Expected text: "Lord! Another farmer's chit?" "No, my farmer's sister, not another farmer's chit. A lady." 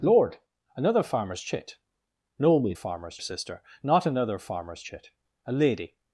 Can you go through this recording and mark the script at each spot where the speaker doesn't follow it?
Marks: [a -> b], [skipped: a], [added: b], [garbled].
"Lord! Another farmer's chit?" "No, my farmer's sister, not another farmer's chit. A lady."